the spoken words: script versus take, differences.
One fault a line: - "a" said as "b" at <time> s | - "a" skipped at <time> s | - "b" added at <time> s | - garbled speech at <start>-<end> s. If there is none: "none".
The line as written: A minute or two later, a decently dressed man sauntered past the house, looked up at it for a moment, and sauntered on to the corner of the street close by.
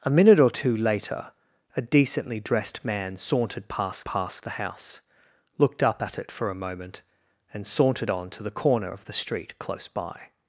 - "past" added at 4.0 s